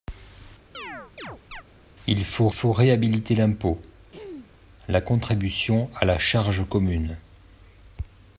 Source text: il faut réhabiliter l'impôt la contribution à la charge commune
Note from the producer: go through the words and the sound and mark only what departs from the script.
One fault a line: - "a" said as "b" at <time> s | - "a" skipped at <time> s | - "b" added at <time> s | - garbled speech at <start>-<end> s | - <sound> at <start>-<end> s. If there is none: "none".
- chirp at 0.7-1.6 s
- "faut" added at 2.5 s
- throat clearing at 4.1-4.5 s